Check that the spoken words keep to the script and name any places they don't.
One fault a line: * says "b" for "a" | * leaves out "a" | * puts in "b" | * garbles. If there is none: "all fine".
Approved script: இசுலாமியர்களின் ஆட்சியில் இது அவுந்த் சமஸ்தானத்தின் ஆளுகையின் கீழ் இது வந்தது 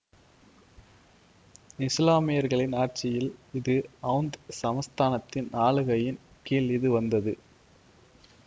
all fine